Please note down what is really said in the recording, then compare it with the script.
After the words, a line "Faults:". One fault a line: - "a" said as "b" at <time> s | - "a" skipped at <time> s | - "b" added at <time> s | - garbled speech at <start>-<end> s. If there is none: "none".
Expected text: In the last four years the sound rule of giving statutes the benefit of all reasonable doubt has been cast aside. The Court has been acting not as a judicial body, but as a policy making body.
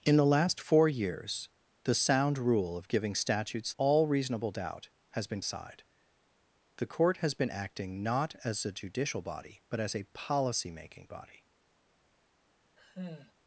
In the last four years the sound rule of giving statutes all reasonable doubt has been aside. The Court has been acting not as a judicial body, but as a policy making body.
Faults:
- "the benefit of" skipped at 3.7 s
- "cast" skipped at 5.4 s